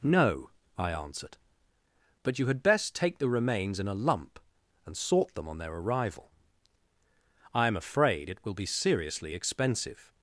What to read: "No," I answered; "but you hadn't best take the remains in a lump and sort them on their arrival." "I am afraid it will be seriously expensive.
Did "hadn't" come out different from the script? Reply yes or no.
yes